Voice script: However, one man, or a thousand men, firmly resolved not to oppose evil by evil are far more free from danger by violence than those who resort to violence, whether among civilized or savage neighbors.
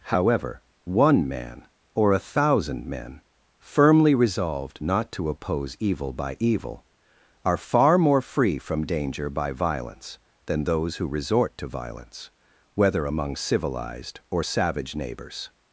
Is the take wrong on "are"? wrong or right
right